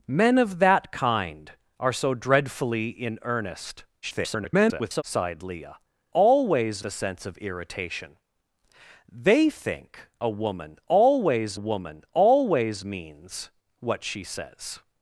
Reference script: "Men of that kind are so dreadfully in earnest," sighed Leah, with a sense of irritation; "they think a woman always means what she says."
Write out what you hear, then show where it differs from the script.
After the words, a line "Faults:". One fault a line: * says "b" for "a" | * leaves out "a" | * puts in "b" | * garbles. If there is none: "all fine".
"Men of that kind are so dreadfully in earnest," [garbled] sighed Leah, always a sense of irritation; "they think a woman always woman always means what she says."
Faults:
* garbles
* says "always" for "with"
* puts in "woman always"